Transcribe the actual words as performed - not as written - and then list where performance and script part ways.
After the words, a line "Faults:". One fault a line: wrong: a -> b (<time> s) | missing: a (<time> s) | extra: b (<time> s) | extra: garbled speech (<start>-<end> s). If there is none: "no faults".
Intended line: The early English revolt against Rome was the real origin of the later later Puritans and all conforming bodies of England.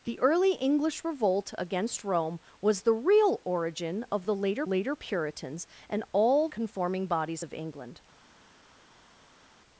The early English revolt against Rome was the real origin of the later later Puritans and all conforming bodies of England.
Faults:
no faults